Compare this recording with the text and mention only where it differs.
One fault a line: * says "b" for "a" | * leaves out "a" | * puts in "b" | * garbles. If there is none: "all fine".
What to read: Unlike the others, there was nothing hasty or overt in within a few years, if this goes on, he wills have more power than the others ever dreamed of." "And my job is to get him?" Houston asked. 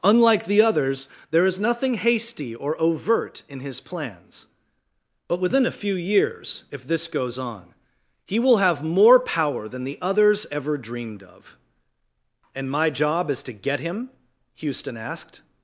* says "is" for "was"
* puts in "his plans But"
* says "will" for "wills"